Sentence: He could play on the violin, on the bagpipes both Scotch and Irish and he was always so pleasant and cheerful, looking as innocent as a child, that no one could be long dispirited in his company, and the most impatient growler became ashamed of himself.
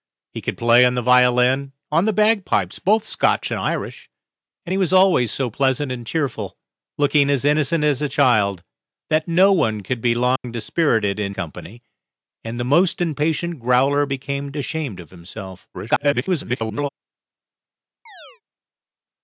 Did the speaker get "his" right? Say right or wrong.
wrong